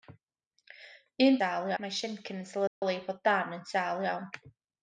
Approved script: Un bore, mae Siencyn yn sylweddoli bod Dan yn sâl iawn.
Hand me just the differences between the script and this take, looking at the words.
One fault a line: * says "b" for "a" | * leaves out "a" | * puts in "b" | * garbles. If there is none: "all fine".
* says "sâl" for "bore"